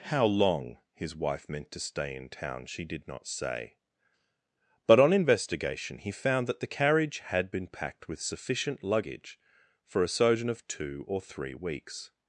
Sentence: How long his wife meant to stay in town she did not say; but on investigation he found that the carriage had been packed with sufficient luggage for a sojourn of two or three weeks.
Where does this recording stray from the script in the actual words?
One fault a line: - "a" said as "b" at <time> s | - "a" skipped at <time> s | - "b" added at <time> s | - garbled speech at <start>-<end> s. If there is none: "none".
none